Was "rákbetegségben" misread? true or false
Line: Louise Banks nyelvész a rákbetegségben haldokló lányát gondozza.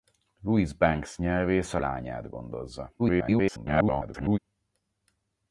true